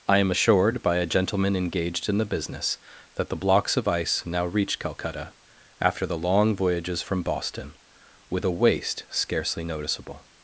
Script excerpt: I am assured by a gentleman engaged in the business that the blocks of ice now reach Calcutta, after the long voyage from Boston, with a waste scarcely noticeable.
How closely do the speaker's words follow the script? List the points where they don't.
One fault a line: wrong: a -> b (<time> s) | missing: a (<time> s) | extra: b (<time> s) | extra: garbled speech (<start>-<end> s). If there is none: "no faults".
wrong: voyage -> voyages (6.6 s)